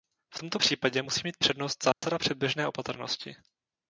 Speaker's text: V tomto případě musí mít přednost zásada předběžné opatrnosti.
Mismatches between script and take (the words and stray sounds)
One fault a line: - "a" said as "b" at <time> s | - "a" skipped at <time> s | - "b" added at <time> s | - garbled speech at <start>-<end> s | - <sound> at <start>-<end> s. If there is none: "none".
- dropout at 1.9-2.0 s